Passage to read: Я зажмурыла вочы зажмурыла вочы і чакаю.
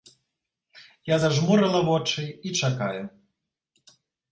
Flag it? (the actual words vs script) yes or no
yes